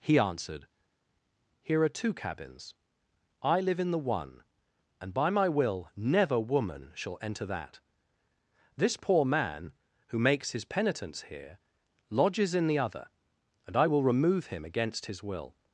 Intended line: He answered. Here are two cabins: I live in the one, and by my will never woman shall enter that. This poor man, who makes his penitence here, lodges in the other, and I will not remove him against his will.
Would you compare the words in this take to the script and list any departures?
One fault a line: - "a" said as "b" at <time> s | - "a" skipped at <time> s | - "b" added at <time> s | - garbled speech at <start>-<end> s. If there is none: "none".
- "not" skipped at 14.0 s